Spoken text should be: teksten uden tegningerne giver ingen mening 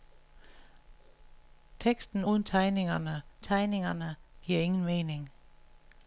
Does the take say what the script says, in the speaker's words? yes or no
no